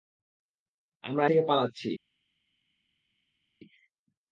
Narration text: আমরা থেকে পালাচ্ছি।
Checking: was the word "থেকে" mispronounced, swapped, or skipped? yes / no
no